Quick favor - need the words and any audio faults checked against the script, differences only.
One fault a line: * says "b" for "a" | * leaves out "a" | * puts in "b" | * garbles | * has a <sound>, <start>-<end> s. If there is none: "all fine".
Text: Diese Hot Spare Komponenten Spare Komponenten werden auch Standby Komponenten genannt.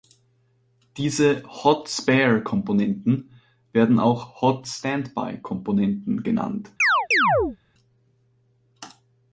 * leaves out "Spare Komponenten"
* puts in "Hot"
* has a chirp, 6.8-7.6 s